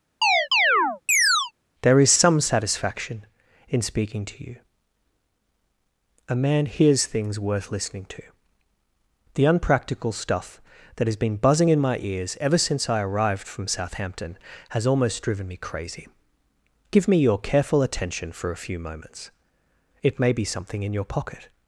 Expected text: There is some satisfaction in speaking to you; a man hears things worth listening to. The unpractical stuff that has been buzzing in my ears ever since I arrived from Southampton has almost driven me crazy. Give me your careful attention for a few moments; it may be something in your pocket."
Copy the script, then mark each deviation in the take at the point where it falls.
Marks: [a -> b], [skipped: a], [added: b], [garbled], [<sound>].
[chirp] There is some satisfaction in speaking to you; a man hears things worth listening to. The unpractical stuff that has been buzzing in my ears ever since I arrived from Southampton has almost driven me crazy. Give me your careful attention for a few moments; it may be something in your pocket."